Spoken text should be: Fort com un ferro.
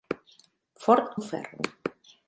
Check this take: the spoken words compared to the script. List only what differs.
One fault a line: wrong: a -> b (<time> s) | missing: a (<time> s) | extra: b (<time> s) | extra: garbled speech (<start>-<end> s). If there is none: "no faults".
missing: com (1.1 s)